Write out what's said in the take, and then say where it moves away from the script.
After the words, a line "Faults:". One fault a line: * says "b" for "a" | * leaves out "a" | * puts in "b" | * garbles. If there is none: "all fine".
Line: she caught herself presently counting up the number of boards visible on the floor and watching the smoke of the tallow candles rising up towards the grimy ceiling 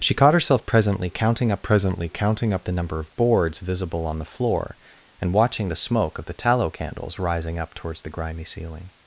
she caught herself presently counting up presently counting up the number of boards visible on the floor and watching the smoke of the tallow candles rising up towards the grimy ceiling
Faults:
* puts in "presently counting up"